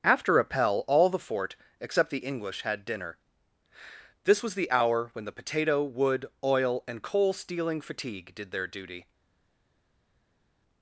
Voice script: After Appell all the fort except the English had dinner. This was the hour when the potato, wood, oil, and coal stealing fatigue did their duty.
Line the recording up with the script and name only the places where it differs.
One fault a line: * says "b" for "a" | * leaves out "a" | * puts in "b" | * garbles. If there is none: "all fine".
all fine